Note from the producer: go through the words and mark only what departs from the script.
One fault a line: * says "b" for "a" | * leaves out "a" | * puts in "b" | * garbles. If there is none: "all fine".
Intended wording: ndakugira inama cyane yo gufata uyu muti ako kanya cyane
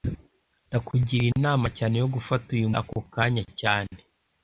* leaves out "muti"